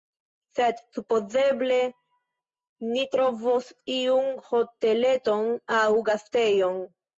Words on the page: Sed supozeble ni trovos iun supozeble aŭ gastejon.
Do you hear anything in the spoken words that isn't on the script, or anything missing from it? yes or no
yes